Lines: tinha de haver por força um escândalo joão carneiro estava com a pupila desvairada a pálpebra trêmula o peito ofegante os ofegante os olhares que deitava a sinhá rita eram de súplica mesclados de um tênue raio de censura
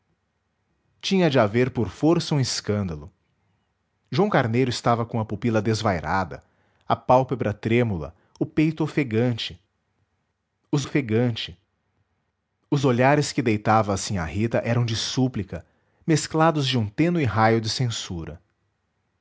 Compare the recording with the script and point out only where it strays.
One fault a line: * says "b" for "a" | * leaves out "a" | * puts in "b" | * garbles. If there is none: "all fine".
all fine